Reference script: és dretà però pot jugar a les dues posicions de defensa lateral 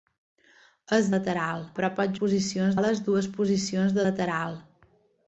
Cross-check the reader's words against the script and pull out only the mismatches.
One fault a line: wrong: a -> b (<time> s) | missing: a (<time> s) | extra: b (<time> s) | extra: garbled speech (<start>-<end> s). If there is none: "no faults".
wrong: dretà -> lateral (1.2 s)
wrong: jugar -> posicions (2.2 s)
missing: defensa (4.1 s)